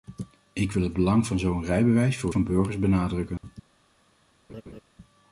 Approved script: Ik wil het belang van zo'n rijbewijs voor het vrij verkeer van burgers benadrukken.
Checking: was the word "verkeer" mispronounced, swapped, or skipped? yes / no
yes